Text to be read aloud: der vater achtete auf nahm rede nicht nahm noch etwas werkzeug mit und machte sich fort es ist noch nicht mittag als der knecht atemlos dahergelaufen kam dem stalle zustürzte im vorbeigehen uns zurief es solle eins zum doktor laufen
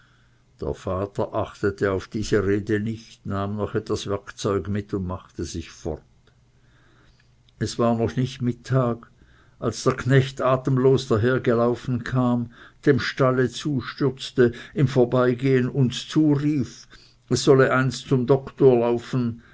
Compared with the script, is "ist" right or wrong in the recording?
wrong